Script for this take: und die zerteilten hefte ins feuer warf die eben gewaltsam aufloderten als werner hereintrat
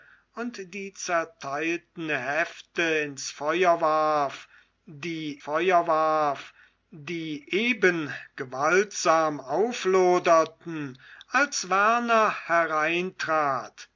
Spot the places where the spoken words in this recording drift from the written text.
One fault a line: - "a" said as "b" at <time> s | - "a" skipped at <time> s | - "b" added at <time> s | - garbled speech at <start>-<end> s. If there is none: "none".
- "feuer warf die" added at 5.4 s